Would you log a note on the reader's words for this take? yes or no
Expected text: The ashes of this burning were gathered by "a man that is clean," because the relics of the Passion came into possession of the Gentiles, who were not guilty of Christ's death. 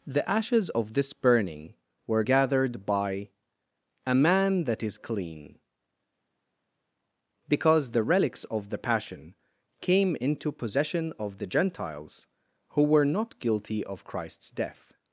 no